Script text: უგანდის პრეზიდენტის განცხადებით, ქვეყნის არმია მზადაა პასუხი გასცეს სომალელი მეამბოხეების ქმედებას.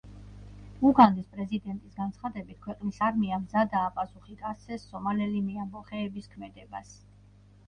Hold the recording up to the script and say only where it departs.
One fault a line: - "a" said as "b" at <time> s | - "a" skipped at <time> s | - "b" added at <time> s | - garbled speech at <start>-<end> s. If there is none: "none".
none